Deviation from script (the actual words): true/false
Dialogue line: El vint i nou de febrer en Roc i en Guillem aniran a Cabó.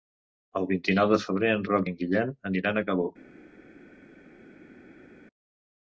false